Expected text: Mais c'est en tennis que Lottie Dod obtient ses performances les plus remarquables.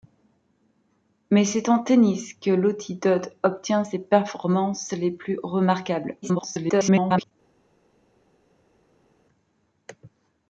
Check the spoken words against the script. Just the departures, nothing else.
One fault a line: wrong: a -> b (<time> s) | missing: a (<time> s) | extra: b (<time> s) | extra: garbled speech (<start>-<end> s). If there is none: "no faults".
extra: garbled speech (6.2-7.3 s)